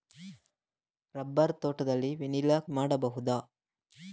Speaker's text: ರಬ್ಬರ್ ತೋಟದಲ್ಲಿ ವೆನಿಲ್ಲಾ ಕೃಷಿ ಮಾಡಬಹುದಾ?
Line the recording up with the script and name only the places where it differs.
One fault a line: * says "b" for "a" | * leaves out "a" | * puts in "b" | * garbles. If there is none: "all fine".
* leaves out "ಕೃಷಿ"